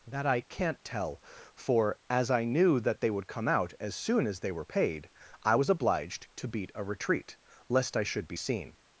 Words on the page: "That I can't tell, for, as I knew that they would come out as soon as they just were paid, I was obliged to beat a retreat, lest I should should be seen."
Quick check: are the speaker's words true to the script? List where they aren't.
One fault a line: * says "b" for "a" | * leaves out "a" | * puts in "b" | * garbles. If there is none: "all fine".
* leaves out "just"
* leaves out "should"